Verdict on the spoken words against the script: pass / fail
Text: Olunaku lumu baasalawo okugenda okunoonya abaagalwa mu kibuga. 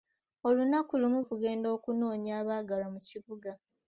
fail